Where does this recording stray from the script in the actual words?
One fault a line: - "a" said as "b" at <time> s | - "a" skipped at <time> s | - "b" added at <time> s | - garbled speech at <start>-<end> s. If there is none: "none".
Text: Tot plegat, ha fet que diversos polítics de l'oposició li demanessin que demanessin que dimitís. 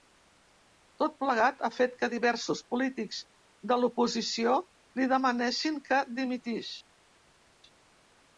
- "demanessin que" skipped at 6.0 s